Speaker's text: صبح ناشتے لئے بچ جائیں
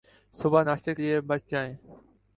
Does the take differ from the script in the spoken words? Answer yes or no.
no